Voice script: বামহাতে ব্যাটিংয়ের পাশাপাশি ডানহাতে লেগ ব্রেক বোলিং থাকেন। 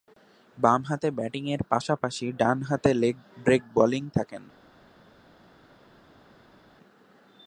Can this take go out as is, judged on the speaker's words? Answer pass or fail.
pass